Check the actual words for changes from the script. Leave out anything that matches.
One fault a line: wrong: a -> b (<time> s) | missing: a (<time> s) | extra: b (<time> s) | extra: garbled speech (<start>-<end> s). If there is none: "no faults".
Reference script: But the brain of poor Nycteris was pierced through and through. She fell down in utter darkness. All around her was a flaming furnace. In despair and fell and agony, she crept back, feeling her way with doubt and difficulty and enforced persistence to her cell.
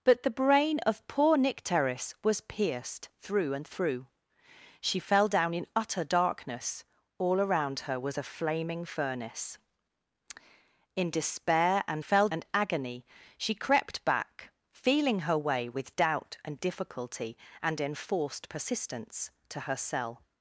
no faults